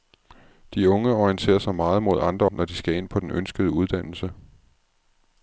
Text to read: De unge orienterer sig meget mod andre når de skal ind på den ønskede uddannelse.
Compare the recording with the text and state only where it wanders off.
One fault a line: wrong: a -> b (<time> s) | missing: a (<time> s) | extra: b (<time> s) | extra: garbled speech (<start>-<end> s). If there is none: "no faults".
no faults